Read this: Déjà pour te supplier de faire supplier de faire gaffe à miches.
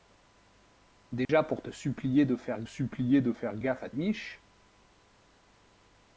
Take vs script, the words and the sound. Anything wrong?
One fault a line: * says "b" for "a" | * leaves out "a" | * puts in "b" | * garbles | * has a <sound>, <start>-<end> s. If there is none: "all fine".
* has a dropout, 1.3-1.3 s